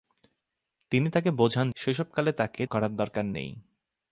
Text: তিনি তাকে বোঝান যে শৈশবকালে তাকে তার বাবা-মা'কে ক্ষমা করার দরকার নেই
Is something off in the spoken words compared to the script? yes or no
yes